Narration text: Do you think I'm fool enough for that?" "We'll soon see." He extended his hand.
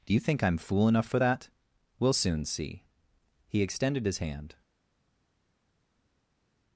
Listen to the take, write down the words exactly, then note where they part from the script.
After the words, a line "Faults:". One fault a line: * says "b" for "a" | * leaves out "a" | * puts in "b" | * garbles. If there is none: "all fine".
Do you think I'm fool enough for that?" "We'll soon see." He extended his hand.
Faults:
all fine